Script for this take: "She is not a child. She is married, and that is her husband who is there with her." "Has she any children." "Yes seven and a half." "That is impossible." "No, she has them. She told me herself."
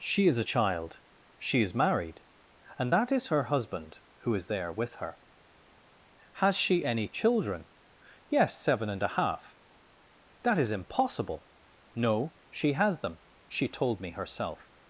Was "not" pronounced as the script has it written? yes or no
no